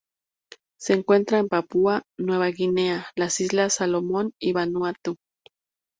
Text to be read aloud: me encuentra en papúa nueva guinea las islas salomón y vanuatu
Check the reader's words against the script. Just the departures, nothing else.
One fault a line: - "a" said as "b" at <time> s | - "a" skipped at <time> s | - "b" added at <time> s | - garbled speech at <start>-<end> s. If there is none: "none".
- "me" said as "se" at 0.8 s